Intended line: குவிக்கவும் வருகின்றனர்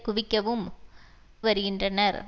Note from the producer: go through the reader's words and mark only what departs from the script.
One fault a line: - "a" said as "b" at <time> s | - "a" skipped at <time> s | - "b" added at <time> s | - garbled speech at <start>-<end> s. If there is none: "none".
none